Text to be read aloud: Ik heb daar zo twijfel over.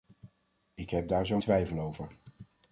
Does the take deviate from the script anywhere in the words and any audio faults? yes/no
no